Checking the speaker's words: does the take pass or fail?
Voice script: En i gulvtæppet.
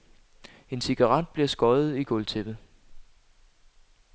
fail